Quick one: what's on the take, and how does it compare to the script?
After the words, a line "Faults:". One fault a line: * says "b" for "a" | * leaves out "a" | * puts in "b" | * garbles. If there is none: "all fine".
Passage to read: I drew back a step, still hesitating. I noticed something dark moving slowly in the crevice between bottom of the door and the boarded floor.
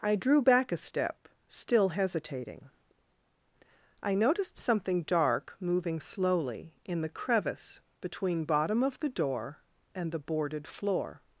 I drew back a step, still hesitating. I noticed something dark moving slowly in the crevice between bottom of the door and the boarded floor.
Faults:
all fine